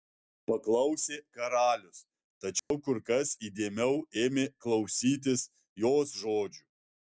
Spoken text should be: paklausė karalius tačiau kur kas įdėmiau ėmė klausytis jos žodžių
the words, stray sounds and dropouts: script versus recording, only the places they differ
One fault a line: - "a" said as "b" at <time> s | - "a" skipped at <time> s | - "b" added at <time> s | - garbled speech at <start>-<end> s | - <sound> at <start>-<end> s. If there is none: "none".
- dropout at 2.6-2.7 s